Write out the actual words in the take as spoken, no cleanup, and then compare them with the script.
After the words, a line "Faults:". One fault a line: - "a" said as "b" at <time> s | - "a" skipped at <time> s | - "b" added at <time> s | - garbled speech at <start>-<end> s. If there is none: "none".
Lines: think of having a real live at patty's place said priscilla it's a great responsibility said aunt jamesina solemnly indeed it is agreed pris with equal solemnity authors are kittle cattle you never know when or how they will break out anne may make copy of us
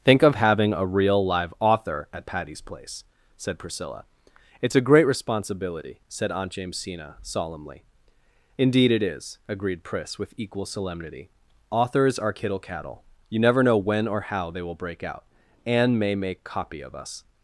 think of having a real live author at patty's place said priscilla it's a great responsibility said aunt jamesina solemnly indeed it is agreed pris with equal solemnity authors are kittle cattle you never know when or how they will break out anne may make copy of us
Faults:
- "author" added at 1.6 s